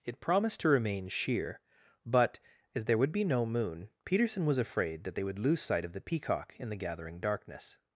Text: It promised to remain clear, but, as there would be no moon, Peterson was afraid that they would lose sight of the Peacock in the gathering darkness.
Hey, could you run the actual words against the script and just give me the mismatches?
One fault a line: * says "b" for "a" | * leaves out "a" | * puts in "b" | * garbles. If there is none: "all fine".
* says "sheer" for "clear"